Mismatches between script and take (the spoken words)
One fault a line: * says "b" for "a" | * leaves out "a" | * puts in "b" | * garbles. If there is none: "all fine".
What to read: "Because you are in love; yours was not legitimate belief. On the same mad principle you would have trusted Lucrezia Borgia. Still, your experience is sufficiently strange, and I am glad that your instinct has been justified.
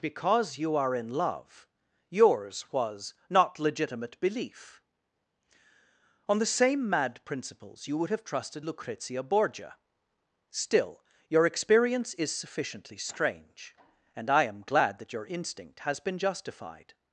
* says "principles" for "principle"